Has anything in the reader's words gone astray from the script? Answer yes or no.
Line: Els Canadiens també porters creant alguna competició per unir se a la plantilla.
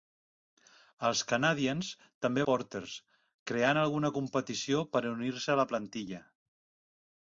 no